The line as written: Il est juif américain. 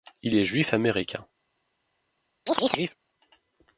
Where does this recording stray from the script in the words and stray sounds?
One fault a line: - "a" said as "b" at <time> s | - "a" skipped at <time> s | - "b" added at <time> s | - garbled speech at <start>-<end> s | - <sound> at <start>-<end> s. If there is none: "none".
- chirp at 2.5-3.0 s